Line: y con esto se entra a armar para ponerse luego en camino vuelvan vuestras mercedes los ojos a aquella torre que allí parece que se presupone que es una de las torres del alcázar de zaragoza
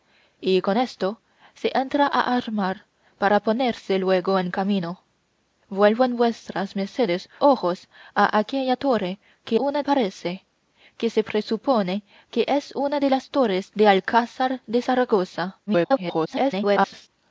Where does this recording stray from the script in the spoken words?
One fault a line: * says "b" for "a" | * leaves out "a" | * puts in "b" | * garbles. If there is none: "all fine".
* leaves out "los"
* says "una" for "allí"
* garbles